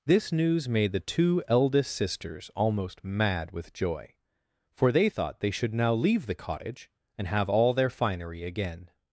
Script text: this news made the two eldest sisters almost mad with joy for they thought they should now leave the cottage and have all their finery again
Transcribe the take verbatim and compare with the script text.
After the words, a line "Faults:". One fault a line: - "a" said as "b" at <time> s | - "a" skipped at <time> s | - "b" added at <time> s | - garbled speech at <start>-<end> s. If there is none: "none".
this news made the two eldest sisters almost mad with joy for they thought they should now leave the cottage and have all their finery again
Faults:
none